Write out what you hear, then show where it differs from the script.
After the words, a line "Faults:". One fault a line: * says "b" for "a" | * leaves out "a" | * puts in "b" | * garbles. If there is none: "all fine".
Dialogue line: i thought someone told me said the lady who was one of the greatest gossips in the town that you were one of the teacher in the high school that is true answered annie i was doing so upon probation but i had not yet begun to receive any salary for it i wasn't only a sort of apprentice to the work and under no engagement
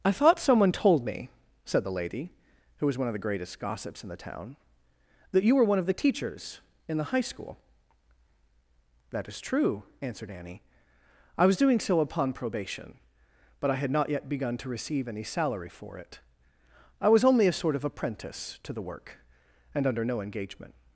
i thought someone told me said the lady who was one of the greatest gossips in the town that you were one of the teachers in the high school that is true answered annie i was doing so upon probation but i had not yet begun to receive any salary for it i was only a sort of apprentice to the work and under no engagement
Faults:
* says "teachers" for "teacher"
* says "was" for "wasn't"